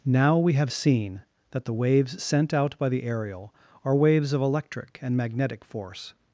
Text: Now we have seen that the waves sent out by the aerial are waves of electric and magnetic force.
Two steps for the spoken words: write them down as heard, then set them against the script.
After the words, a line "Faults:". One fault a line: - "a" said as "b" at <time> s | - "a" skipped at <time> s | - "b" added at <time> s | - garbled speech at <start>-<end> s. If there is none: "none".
Now we have seen that the waves sent out by the aerial are waves of electric and magnetic force.
Faults:
none